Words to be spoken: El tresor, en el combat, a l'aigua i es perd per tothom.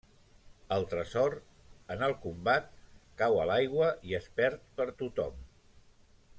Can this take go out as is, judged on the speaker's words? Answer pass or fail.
fail